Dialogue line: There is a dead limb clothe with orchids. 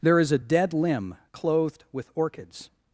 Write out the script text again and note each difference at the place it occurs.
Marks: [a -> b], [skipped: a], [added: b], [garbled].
There is a dead limb [clothe -> clothed] with orchids.